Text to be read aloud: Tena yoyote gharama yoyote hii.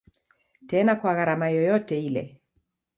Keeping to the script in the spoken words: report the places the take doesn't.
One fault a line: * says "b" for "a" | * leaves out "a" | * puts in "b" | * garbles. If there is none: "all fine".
* says "kwa" for "yoyote"
* says "ile" for "hii"